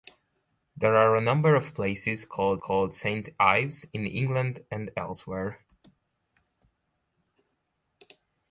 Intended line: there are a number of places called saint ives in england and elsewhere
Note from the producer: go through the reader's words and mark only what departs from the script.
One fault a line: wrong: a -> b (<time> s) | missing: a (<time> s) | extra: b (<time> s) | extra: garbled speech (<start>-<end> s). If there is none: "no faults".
extra: called (2.6 s)